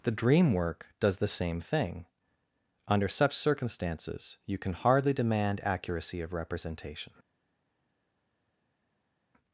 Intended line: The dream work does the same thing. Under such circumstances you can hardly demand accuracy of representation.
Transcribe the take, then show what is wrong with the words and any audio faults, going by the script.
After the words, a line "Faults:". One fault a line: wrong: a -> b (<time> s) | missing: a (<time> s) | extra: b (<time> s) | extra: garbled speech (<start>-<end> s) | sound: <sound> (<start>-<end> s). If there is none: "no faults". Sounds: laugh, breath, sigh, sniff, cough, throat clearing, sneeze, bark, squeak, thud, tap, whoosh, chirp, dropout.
The dream work does the same thing. Under such circumstances you can hardly demand accuracy of representation.
Faults:
no faults